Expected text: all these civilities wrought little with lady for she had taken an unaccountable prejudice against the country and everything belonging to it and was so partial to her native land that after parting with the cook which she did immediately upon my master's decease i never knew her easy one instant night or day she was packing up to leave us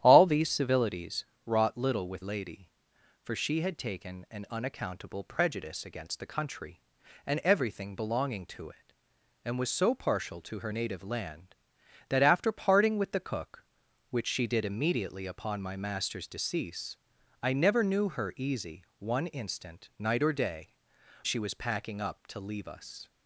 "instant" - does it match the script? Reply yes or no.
yes